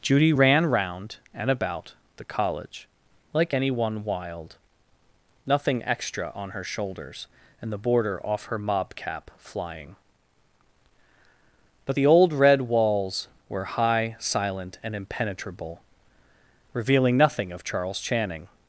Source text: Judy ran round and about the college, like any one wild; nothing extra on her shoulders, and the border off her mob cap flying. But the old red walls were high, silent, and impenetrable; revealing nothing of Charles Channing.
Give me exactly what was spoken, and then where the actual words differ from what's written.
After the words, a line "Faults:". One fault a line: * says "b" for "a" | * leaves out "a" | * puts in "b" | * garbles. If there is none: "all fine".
Judy ran round and about the college, like any one wild; nothing extra on her shoulders, and the border off her mob cap flying. But the old red walls were high, silent, and impenetrable; revealing nothing of Charles Channing.
Faults:
all fine